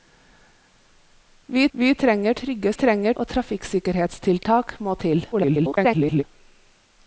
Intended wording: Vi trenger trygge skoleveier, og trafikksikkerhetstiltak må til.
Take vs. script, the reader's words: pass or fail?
fail